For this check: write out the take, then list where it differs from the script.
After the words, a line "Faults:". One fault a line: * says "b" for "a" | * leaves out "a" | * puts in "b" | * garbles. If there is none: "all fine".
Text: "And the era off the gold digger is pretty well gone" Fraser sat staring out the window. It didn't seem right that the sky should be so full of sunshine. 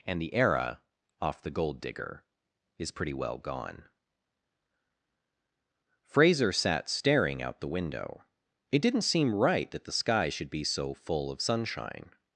"And the era off the gold digger is pretty well gone" Fraser sat staring out the window. It didn't seem right that the sky should be so full of sunshine.
Faults:
all fine